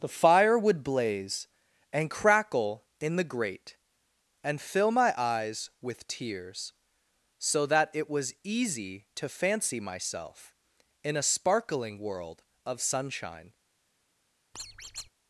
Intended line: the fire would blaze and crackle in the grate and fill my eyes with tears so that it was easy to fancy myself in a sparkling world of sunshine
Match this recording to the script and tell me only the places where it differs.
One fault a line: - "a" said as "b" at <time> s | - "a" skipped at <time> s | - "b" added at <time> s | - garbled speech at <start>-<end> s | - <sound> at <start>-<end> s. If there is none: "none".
- squeak at 14.5-15.1 s